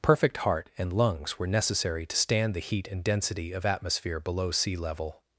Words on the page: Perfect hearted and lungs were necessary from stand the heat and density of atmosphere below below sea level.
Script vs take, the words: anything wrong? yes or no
yes